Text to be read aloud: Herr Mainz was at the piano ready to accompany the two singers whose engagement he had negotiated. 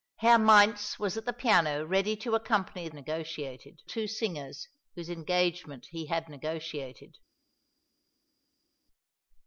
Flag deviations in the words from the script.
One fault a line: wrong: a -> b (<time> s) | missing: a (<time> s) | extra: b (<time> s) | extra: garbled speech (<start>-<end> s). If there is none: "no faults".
wrong: the -> negotiated (2.9 s)